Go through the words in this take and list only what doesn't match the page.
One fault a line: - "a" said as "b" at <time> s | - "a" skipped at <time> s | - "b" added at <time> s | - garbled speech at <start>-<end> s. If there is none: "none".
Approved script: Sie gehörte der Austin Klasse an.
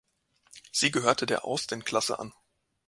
none